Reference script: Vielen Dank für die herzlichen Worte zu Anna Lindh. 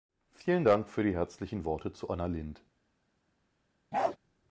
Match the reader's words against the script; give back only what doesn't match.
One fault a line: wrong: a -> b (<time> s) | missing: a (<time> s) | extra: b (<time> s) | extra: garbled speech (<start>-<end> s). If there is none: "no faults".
no faults